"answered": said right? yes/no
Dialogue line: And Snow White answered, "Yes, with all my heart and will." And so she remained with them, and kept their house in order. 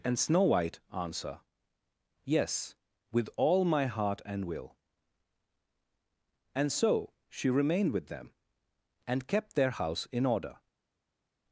no